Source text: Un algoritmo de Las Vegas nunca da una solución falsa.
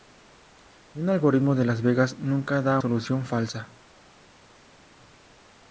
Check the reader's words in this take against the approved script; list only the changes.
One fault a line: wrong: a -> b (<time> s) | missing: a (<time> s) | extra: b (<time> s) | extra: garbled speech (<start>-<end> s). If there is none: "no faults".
missing: una (2.8 s)